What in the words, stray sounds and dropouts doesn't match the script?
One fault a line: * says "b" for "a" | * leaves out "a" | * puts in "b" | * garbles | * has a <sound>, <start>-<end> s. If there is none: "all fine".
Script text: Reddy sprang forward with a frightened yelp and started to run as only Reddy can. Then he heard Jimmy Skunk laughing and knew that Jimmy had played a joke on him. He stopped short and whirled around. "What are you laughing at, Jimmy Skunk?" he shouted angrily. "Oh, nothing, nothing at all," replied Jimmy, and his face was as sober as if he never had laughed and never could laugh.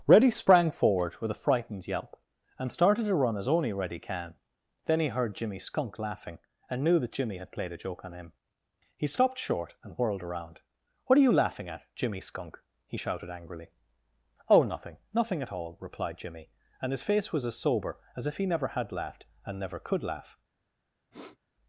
* has a sniff, 21.1-21.4 s